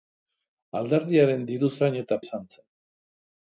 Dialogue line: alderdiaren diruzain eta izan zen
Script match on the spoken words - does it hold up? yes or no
yes